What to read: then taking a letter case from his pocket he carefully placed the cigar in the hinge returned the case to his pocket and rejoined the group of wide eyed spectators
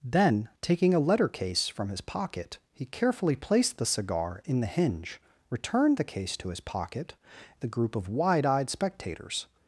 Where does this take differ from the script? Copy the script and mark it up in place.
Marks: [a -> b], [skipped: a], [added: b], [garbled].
then taking a letter case from his pocket he carefully placed the cigar in the hinge returned the case to his pocket [skipped: and rejoined] the group of wide eyed spectators